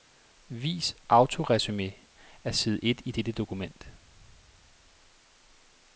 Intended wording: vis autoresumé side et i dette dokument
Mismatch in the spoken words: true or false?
true